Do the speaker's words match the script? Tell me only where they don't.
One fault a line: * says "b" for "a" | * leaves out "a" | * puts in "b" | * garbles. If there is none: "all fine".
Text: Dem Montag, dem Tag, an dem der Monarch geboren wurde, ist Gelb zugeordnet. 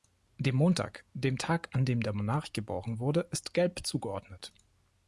all fine